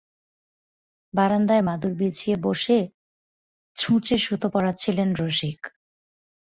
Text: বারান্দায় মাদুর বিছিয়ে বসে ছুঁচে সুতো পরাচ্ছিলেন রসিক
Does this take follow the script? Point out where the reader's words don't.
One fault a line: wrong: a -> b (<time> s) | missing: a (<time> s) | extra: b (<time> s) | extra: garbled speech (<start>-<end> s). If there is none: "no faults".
no faults